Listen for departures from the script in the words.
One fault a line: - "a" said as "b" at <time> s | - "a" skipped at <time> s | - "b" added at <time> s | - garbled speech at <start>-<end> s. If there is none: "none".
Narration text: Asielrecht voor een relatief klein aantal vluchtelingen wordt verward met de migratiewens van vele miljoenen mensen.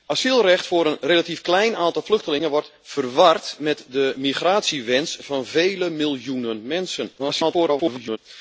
- garbled speech at 7.2-8.2 s